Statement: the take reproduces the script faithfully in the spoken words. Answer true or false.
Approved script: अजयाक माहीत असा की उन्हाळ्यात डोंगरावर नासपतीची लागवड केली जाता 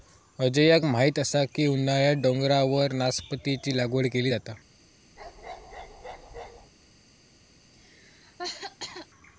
true